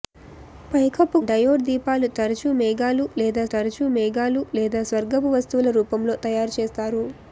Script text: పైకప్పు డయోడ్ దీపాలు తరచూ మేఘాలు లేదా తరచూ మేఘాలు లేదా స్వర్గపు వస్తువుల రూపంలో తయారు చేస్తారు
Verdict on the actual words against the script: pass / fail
pass